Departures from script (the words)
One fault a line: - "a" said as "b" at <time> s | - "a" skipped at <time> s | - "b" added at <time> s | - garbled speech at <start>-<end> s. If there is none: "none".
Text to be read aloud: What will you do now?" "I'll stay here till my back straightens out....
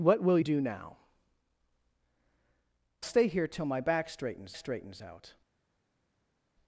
- "you" skipped at 0.4 s
- "I'll" skipped at 1.0 s
- "straightens" added at 4.6 s